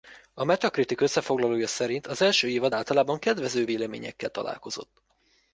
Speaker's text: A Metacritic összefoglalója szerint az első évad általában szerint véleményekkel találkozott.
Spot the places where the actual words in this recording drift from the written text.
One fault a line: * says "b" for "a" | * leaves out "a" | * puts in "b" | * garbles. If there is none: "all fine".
* says "kedvező" for "szerint"